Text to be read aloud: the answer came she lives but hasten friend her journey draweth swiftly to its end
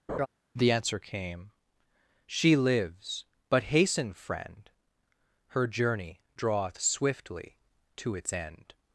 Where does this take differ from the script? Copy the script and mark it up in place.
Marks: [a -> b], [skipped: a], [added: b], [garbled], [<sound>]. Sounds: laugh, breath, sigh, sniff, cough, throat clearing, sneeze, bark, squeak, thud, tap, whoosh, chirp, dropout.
[laugh] the answer came she lives but hasten friend her journey draweth swiftly to its end